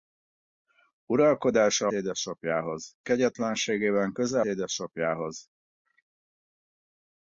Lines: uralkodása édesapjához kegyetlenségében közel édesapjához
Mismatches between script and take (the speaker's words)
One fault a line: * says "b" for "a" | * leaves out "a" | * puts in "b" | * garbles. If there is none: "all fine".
all fine